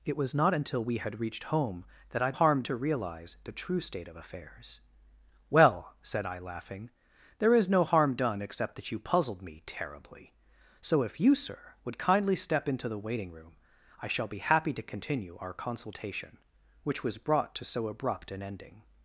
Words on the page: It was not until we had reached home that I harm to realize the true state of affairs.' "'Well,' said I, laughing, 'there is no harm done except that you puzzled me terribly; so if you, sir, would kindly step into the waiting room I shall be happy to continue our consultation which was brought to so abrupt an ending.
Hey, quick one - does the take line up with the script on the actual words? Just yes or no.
yes